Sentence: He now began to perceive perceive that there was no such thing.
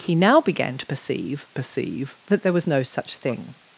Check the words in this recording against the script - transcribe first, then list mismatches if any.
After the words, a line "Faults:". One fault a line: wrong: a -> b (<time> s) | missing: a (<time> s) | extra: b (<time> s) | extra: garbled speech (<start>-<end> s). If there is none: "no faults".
He now began to perceive perceive that there was no such thing.
Faults:
no faults